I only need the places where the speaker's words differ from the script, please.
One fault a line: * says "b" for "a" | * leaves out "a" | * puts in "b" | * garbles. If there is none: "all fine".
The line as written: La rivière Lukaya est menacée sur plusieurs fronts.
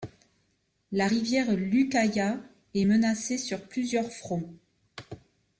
all fine